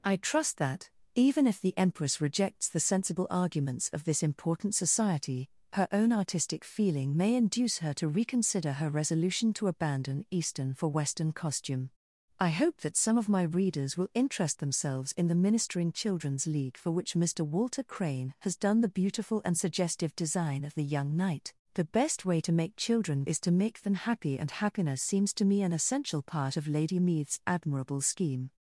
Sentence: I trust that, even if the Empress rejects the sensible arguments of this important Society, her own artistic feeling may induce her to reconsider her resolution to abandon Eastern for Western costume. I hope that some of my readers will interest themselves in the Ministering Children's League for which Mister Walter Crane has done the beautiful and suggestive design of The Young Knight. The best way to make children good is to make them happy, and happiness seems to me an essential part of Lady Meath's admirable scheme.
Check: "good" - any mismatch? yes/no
yes